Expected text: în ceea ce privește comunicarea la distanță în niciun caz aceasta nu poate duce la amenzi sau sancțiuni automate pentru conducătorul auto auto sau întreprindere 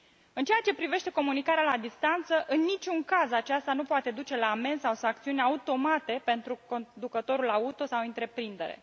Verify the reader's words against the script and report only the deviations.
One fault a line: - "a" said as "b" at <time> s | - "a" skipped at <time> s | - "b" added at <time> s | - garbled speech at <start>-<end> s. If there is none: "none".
- "auto" skipped at 7.8 s